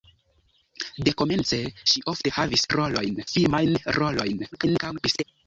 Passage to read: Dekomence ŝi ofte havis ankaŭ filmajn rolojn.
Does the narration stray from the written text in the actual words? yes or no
yes